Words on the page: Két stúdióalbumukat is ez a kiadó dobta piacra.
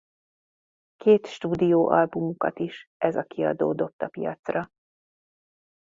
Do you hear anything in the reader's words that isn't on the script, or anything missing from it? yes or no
no